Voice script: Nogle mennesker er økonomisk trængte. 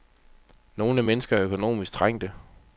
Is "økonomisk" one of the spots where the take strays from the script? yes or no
no